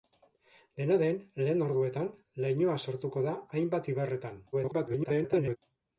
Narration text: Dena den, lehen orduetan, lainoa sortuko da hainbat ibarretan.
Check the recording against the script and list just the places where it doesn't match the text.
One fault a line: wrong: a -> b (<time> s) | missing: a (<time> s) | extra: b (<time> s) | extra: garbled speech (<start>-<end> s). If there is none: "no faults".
extra: garbled speech (4.5-5.6 s)